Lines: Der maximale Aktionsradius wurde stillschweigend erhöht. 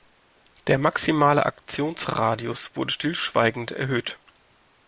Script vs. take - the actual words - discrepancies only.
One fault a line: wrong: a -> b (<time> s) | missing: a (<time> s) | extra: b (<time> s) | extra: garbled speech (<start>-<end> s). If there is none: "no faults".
no faults